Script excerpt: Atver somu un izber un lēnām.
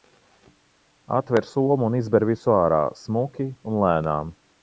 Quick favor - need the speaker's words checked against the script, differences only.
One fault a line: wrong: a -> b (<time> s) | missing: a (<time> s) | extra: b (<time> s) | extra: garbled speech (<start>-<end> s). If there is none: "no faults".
extra: visu ārā smuki (2.3 s)